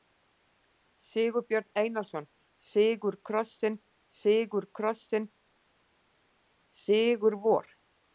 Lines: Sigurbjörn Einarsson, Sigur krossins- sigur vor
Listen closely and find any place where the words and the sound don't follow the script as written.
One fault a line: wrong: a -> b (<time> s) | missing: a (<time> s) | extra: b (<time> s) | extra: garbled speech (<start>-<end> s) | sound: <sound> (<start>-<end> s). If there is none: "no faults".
extra: krossins sigur (4.8 s)